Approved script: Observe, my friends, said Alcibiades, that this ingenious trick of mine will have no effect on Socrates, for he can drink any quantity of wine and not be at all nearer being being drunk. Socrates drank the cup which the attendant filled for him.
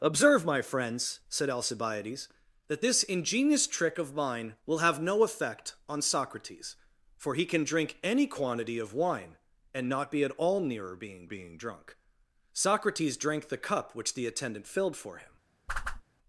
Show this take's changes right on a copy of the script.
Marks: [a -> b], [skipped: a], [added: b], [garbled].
Observe, my friends, said Alcibiades, that this ingenious trick of mine will have no effect on Socrates, for he can drink any quantity of wine and not be at all nearer being being drunk. Socrates drank the cup which the attendant filled for him.